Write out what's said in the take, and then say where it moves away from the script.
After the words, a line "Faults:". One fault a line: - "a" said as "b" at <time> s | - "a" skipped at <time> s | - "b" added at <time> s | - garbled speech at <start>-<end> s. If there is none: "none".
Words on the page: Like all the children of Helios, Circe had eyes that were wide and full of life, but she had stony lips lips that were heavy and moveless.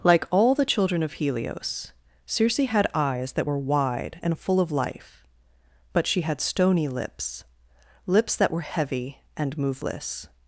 Like all the children of Helios, Circe had eyes that were wide and full of life, but she had stony lips lips that were heavy and moveless.
Faults:
none